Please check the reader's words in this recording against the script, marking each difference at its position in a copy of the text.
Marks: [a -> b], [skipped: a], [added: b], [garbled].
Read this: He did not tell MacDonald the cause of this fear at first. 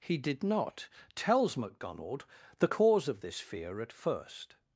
He did not [tell -> tells] MacDonald the cause of this fear at first.